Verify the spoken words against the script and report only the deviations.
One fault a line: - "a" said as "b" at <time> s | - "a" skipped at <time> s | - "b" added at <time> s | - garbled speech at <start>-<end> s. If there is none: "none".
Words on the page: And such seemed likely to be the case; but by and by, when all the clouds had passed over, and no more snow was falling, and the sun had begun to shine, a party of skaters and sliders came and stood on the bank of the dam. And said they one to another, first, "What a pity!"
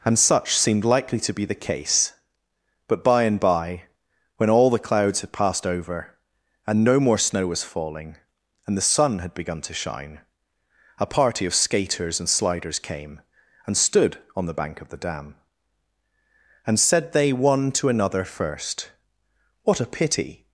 none